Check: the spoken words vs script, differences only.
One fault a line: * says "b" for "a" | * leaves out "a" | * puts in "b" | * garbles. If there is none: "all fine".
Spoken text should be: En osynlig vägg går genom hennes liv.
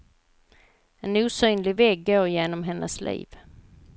all fine